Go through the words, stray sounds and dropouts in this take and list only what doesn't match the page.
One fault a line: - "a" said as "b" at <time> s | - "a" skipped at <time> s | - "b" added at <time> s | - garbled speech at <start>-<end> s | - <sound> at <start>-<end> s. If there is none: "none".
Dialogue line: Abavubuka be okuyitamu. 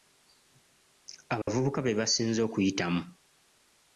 - dropout at 1.4-1.5 s
- "basinze" added at 2.0 s